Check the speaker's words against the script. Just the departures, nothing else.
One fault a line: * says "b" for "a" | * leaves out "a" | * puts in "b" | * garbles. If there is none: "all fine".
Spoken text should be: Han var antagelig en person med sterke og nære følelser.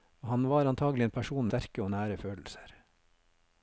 * leaves out "med"